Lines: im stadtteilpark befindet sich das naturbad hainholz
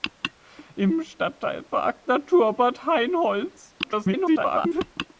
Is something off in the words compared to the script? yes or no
yes